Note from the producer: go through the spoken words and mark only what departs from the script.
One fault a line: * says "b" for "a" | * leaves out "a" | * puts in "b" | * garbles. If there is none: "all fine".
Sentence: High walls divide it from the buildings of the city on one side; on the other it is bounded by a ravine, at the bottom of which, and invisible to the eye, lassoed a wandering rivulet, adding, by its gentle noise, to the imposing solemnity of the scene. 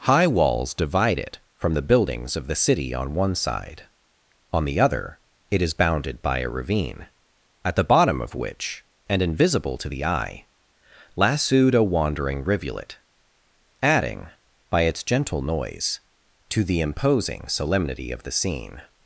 all fine